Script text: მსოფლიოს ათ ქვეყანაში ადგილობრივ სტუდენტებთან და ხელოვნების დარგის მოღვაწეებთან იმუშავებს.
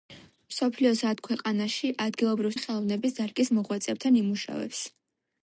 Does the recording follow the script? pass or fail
fail